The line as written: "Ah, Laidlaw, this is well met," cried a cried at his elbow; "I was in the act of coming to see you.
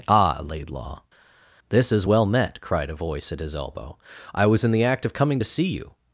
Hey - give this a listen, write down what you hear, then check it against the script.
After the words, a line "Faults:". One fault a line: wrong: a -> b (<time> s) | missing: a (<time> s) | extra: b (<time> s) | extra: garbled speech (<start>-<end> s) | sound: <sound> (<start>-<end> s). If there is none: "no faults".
"Ah, Laidlaw, this is well met," cried a voice at his elbow; "I was in the act of coming to see you.
Faults:
wrong: cried -> voice (2.9 s)